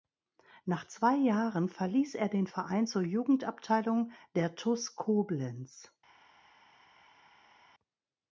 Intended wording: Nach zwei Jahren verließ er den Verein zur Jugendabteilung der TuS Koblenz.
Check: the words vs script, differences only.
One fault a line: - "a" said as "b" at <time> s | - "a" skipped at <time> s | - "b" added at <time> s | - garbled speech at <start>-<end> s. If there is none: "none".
none